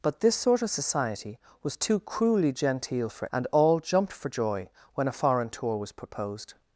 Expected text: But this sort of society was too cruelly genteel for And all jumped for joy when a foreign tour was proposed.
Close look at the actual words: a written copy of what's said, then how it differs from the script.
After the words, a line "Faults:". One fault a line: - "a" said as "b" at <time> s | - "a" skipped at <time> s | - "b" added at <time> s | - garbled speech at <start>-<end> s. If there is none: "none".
But this sort of society was too cruelly genteel for And all jumped for joy when a foreign tour was proposed.
Faults:
none